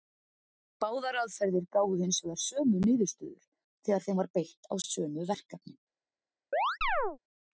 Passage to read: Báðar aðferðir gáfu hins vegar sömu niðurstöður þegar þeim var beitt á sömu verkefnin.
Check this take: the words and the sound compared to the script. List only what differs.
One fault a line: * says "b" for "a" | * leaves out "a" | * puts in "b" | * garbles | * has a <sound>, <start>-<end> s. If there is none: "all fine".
* has a chirp, 6.5-7.2 s